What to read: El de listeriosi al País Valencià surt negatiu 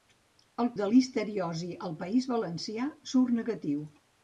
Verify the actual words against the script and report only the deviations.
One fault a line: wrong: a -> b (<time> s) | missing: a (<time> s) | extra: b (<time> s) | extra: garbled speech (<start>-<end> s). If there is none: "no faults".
no faults